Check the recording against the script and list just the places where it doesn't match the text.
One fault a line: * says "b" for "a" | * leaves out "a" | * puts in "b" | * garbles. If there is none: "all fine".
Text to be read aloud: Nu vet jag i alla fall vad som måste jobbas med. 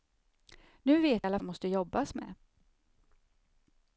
* leaves out "jag"
* leaves out "fall vad"